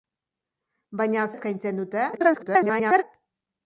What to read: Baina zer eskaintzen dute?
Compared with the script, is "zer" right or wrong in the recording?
wrong